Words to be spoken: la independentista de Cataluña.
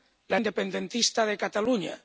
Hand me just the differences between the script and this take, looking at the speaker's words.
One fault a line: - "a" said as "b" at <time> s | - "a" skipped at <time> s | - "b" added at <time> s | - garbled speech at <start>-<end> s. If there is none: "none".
none